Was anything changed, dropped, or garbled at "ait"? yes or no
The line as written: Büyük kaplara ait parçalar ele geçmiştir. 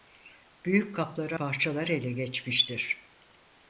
yes